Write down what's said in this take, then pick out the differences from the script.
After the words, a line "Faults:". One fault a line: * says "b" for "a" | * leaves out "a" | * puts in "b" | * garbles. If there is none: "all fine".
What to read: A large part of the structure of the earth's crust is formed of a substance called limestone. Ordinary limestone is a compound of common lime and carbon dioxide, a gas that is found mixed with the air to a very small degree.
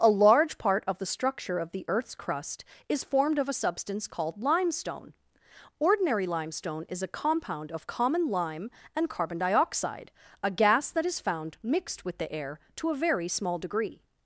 A large part of the structure of the earth's crust is formed of a substance called limestone. Ordinary limestone is a compound of common lime and carbon dioxide, a gas that is found mixed with the air to a very small degree.
Faults:
all fine